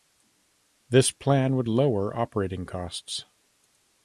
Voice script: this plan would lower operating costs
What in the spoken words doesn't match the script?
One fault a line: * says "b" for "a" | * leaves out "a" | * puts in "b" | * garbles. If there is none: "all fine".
all fine